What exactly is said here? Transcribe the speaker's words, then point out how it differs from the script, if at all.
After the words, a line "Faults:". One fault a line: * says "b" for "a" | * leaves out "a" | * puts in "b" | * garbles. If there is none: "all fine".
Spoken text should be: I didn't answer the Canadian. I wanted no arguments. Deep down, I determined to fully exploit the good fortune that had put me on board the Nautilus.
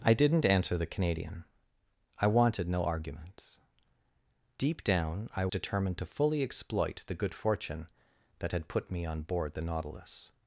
I didn't answer the Canadian. I wanted no arguments. Deep down, I determined to fully exploit the good fortune that had put me on board the Nautilus.
Faults:
all fine